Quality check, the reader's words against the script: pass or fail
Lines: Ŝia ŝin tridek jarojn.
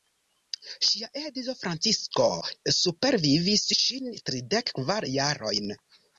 fail